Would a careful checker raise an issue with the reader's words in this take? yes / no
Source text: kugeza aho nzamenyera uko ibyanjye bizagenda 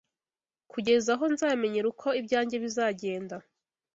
no